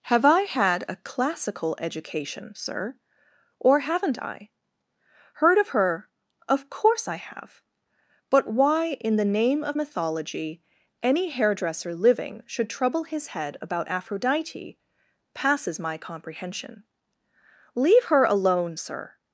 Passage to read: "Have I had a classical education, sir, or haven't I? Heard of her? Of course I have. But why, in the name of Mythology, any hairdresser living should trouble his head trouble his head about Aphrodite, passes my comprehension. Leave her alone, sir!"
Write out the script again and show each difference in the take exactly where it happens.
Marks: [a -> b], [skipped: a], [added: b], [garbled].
"Have I had a classical education, sir, or haven't I? Heard of her? Of course I have. But why, in the name of Mythology, any hairdresser living should trouble his head [skipped: trouble his head] about Aphrodite, passes my comprehension. Leave her alone, sir!"